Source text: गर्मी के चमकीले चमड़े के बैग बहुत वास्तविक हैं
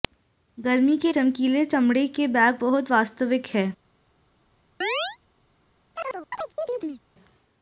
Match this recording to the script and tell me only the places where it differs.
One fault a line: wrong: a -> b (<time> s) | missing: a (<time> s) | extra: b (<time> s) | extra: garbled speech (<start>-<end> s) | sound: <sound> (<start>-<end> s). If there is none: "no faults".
sound: chirp (4.8-5.2 s)
sound: chirp (6.0-7.0 s)